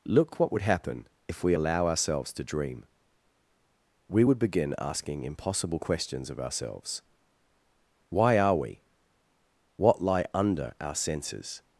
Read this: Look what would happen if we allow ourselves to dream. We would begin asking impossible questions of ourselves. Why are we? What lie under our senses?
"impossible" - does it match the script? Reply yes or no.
yes